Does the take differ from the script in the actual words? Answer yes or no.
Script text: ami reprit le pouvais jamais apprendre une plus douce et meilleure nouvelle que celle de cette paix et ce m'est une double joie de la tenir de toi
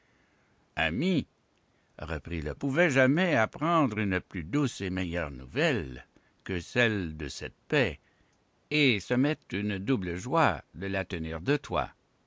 no